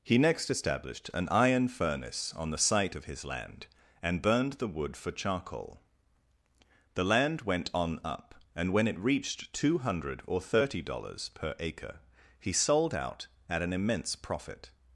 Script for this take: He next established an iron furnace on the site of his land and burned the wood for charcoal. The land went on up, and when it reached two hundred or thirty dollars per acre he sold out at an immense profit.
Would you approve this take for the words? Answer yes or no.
yes